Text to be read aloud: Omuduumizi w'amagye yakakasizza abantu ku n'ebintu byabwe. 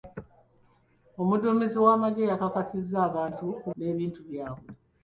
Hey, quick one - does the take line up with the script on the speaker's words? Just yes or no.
yes